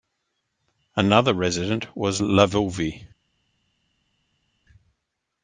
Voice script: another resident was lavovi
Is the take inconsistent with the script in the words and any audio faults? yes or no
no